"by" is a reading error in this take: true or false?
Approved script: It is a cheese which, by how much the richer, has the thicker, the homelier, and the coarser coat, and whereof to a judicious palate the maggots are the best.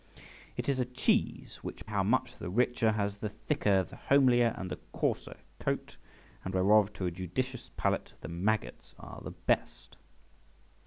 true